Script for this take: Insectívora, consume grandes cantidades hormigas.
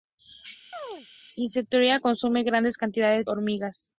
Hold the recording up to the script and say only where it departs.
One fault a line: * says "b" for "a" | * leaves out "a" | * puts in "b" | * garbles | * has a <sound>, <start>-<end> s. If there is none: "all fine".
* has a chirp, 0.7-1.1 s